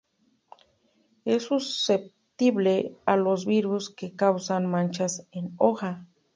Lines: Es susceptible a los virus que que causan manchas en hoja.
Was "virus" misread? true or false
false